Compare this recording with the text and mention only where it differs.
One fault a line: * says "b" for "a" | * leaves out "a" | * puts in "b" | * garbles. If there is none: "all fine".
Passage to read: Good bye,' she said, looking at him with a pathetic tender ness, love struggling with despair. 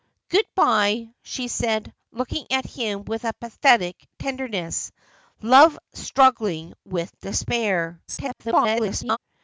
* garbles